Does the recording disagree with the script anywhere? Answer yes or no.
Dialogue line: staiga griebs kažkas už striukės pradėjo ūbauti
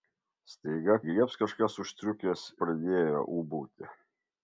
no